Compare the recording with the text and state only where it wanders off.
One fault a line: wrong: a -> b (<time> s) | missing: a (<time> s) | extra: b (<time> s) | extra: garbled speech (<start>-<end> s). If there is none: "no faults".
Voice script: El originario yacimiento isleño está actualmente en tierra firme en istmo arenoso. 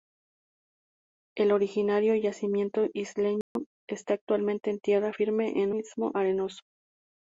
no faults